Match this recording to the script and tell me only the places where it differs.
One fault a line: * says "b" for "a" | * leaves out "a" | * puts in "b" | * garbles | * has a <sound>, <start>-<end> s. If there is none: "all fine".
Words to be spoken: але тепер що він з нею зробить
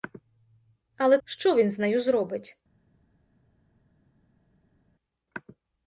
* leaves out "тепер"